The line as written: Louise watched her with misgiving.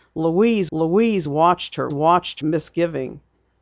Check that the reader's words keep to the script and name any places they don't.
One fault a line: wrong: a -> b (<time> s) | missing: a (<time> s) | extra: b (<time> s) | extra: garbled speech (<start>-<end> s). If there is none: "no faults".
extra: louise (0.7 s)
wrong: with -> watched (1.9 s)